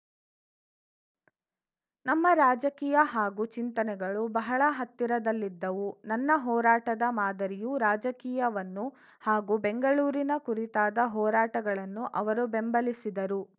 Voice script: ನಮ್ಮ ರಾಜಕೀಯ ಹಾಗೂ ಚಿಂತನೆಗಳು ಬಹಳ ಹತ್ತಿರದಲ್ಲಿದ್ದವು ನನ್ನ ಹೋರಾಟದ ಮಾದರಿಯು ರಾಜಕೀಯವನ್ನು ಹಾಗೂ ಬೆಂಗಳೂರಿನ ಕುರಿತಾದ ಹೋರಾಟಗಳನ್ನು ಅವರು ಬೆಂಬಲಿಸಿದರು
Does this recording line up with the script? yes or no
yes